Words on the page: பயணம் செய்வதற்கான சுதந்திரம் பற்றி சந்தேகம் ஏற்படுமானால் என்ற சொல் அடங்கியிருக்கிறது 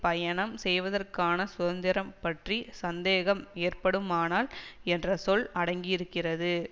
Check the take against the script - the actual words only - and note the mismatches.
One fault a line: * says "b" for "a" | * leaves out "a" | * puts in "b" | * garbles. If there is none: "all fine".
all fine